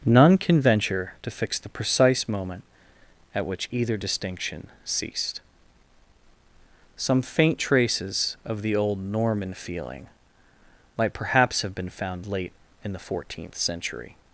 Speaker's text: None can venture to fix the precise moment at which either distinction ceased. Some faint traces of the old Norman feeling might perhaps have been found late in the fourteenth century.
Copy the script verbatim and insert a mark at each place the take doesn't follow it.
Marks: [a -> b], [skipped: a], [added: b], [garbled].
None can venture to fix the precise moment at which either distinction ceased. Some faint traces of the old Norman feeling might perhaps have been found late in the fourteenth century.